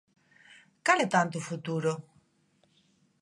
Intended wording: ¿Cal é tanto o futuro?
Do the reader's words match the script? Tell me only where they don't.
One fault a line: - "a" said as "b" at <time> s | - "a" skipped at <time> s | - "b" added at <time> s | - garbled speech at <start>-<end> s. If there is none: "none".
none